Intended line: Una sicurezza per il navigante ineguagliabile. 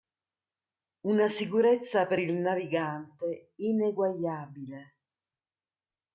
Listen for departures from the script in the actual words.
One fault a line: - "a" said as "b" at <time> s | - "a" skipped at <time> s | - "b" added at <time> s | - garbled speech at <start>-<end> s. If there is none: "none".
none